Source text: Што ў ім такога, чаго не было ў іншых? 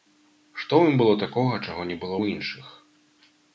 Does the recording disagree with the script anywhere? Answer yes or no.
yes